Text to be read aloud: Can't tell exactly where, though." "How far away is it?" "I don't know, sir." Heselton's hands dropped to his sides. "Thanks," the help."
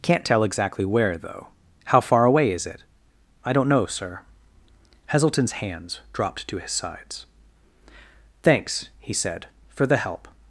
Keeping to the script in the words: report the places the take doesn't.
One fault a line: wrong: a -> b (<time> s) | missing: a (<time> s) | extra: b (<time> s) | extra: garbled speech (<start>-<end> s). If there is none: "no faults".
extra: he said for (9.0 s)